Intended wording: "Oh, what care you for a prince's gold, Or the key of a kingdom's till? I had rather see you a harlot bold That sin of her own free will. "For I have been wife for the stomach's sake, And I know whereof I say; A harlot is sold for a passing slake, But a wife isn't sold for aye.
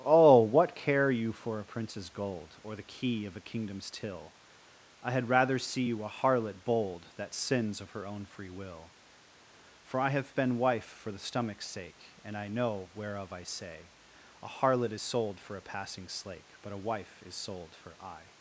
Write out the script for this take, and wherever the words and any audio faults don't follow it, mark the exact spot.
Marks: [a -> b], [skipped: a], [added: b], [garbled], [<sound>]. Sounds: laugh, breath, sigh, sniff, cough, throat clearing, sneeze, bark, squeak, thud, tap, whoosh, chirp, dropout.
"Oh, what care you for a prince's gold, Or the key of a kingdom's till? I had rather see you a harlot bold That [sin -> sins] of her own free will. "For I have been wife for the stomach's sake, And I know whereof I say; A harlot is sold for a passing slake, But a wife [isn't -> is] sold for aye.